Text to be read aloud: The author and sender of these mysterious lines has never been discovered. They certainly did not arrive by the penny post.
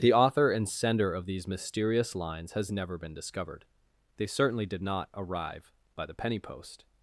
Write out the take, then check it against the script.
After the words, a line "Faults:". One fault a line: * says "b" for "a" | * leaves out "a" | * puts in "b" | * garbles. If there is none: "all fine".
The author and sender of these mysterious lines has never been discovered. They certainly did not arrive by the penny post.
Faults:
all fine